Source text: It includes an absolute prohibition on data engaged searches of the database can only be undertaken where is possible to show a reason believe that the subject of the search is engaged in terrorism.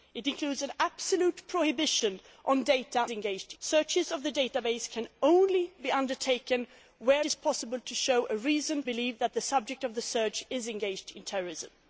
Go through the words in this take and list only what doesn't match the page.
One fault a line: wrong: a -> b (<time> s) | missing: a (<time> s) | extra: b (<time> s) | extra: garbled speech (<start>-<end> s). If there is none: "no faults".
no faults